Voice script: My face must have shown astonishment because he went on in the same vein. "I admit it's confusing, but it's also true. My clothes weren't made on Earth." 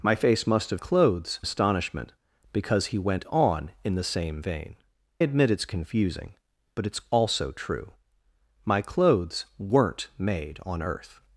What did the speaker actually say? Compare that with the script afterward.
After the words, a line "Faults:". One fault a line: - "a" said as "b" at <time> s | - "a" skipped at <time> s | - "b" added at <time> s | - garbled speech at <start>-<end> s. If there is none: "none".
My face must have clothes astonishment because he went on in the same vein. "admit it's confusing, but it's also true. My clothes weren't made on Earth."
Faults:
- "shown" said as "clothes" at 0.8 s
- "I" skipped at 4.7 s